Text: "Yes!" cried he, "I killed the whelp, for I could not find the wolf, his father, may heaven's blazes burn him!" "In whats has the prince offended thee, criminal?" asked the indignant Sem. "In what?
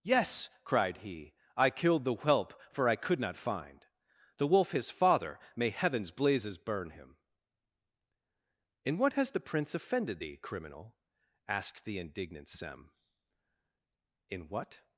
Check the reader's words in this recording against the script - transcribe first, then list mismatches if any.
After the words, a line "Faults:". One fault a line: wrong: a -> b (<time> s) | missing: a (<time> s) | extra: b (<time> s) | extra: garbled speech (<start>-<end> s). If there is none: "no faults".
"Yes!" cried he, "I killed the whelp, for I could not find the wolf, his father, may heaven's blazes burn him!" "In what has the prince offended thee, criminal?" asked the indignant Sem. "In what?
Faults:
wrong: whats -> what (9.0 s)